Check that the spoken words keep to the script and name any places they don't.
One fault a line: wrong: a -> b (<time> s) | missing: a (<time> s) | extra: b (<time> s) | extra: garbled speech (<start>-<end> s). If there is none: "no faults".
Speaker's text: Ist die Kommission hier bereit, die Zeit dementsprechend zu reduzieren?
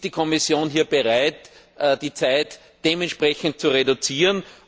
no faults